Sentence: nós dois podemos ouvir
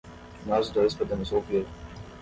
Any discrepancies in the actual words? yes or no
no